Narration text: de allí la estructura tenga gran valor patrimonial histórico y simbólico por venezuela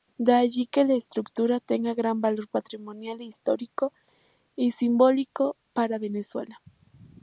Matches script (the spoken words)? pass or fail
fail